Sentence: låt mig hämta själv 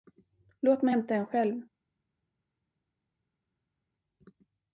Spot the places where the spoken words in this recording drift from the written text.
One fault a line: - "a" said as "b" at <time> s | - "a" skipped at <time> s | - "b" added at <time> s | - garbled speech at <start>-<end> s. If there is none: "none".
- "en" added at 1.1 s